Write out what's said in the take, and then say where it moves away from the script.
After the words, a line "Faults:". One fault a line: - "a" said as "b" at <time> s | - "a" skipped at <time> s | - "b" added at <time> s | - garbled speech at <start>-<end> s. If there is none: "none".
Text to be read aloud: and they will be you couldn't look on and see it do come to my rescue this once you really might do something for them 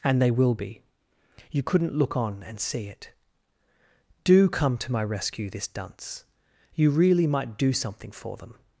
and they will be you couldn't look on and see it do come to my rescue this dunce you really might do something for them
Faults:
- "once" said as "dunce" at 5.7 s